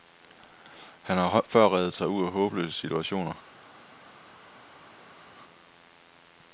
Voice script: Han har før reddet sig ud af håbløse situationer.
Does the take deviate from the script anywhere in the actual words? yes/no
no